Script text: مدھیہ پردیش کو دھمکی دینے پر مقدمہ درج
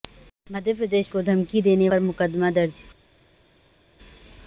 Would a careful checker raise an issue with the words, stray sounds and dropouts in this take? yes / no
no